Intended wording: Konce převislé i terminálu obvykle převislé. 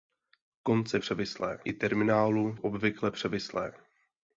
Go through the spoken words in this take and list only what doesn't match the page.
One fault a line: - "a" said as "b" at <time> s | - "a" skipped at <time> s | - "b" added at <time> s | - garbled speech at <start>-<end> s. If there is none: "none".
none